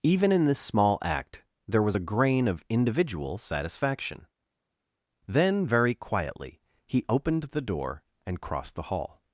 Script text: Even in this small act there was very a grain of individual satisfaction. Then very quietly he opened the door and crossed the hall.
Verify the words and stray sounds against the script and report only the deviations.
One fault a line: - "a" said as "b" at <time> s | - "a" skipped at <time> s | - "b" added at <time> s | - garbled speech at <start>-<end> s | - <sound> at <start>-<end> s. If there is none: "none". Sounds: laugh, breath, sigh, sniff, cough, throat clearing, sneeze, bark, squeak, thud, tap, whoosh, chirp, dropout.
- "very" skipped at 2.0 s